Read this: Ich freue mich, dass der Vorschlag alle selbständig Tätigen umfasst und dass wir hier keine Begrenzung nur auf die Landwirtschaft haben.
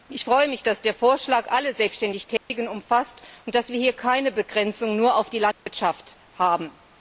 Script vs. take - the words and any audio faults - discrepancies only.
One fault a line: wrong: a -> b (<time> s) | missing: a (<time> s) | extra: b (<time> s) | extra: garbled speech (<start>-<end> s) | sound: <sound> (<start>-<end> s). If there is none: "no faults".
sound: dropout (2.4-2.5 s)
sound: dropout (5.5-5.7 s)